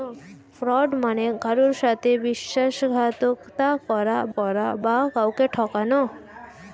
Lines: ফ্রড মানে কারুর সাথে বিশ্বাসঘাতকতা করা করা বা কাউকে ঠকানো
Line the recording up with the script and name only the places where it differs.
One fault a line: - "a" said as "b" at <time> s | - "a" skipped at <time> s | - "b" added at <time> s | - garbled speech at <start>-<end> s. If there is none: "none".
none